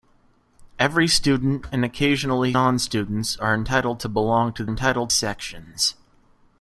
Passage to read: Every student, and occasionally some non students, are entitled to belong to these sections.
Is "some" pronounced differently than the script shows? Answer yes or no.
yes